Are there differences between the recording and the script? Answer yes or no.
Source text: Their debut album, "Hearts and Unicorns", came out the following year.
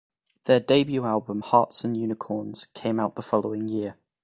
no